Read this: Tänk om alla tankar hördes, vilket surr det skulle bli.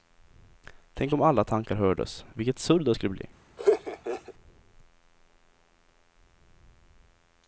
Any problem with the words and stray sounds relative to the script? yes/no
yes